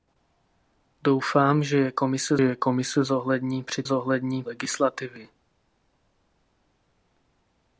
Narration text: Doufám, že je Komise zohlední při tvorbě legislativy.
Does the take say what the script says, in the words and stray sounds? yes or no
no